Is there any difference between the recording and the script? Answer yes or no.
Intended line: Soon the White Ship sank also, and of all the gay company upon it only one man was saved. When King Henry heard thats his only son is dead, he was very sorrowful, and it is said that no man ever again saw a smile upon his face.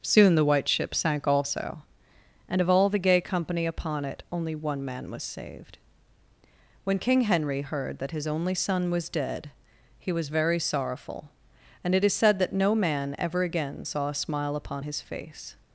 yes